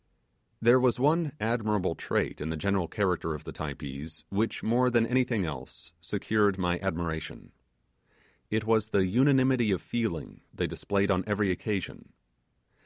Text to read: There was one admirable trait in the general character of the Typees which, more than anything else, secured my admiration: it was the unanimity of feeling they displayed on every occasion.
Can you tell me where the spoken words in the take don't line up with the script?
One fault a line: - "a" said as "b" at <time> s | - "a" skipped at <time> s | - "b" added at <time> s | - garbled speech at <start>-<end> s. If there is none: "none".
none